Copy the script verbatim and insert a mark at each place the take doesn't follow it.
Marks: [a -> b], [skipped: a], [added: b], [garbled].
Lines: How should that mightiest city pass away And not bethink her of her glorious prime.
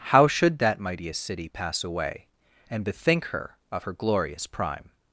How should that mightiest city pass away And [skipped: not] bethink her of her glorious prime.